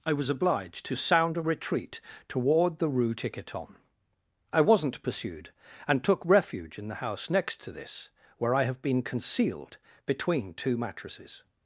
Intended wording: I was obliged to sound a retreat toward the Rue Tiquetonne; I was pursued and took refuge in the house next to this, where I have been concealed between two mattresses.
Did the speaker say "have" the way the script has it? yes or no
yes